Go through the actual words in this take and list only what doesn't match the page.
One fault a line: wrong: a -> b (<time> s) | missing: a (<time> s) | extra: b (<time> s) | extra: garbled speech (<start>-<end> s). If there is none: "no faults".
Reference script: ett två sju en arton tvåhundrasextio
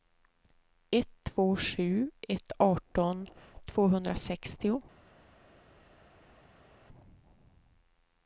wrong: en -> ett (2.3 s)